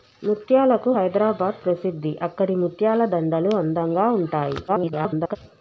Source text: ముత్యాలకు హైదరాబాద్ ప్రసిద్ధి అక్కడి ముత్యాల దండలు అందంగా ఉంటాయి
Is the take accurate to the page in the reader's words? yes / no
no